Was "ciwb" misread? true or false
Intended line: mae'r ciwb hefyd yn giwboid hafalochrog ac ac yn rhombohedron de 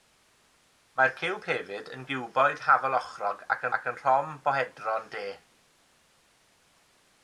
false